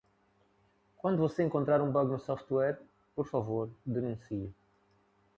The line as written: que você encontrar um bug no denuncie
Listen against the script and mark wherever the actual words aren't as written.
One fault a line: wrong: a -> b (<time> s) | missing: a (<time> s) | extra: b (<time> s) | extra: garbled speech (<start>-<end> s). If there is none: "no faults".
wrong: que -> quando (1.0 s)
extra: software por favor (2.2 s)